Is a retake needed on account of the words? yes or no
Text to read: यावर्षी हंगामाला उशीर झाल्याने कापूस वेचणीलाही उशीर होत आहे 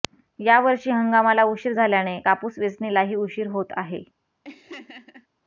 no